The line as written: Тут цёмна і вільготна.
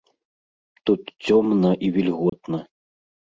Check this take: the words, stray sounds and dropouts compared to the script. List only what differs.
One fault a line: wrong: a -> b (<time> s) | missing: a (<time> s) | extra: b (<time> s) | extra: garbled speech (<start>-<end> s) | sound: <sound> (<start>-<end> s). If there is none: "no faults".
sound: dropout (2.3-2.3 s)